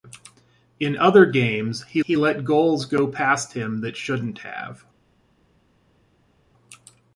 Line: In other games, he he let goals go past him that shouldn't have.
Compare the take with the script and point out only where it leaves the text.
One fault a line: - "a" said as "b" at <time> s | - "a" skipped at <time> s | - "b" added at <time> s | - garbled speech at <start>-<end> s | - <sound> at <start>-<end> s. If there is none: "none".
none